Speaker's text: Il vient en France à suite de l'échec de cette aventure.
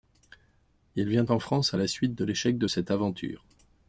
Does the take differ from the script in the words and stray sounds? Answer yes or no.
yes